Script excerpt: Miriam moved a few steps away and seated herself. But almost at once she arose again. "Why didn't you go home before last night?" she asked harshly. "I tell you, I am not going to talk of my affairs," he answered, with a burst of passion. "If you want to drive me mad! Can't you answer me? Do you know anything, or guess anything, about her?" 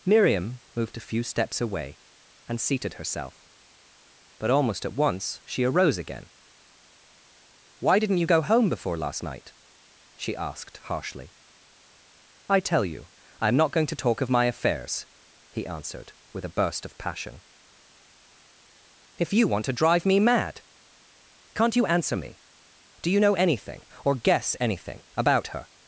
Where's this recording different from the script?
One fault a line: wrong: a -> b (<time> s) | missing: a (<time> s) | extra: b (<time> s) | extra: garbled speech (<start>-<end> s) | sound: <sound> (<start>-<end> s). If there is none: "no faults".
no faults